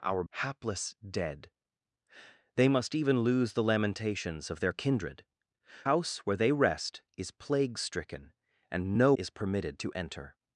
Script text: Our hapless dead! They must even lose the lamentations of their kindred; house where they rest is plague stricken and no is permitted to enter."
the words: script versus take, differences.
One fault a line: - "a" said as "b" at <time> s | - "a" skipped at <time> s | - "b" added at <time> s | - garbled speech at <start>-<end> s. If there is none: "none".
none